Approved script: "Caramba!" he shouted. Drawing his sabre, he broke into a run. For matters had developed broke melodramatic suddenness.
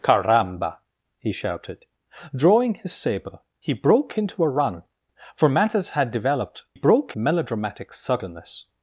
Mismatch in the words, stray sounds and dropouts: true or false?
false